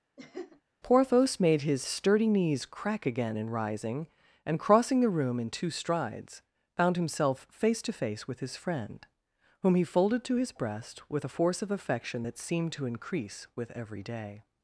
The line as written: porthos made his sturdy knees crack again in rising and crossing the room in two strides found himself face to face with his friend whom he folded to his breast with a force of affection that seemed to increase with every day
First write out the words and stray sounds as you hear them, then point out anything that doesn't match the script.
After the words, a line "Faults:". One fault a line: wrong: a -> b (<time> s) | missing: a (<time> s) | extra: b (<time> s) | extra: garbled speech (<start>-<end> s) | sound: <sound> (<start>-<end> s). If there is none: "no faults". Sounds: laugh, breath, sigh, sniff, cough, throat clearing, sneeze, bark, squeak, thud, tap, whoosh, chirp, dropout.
porthos made his sturdy knees crack again in rising and crossing the room in two strides found himself face to face with his friend whom he folded to his breast with a force of affection that seemed to increase with every day
Faults:
sound: laugh (0.2-0.6 s)